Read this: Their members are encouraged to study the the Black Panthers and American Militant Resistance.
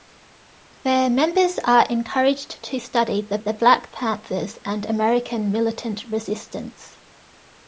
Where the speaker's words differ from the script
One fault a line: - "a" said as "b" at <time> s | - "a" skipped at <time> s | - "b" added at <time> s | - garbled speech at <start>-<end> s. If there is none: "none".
none